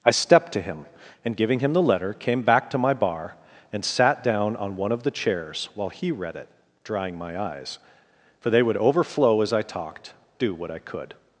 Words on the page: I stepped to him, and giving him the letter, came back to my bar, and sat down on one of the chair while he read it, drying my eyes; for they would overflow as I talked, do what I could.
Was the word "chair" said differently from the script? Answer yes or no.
yes